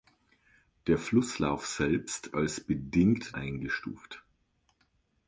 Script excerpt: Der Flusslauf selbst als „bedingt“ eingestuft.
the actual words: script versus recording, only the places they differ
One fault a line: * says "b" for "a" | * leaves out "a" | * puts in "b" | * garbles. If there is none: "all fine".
all fine